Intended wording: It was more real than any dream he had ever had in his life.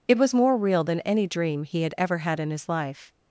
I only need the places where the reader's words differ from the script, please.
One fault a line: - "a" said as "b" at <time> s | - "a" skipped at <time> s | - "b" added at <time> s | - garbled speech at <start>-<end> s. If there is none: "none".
none